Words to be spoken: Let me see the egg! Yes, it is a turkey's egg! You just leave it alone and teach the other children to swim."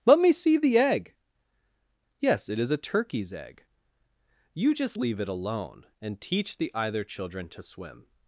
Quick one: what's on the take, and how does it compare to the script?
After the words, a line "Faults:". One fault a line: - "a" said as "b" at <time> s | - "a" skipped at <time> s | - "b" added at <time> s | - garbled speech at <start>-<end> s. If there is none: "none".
Let me see the egg! Yes, it is a turkey's egg! You just leave it alone and teach the either children to swim."
Faults:
- "other" said as "either" at 6.7 s